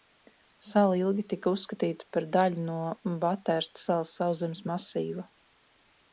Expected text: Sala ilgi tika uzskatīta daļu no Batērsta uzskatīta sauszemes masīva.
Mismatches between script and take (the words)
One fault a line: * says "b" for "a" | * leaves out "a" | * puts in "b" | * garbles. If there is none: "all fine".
* puts in "par"
* says "salas" for "uzskatīta"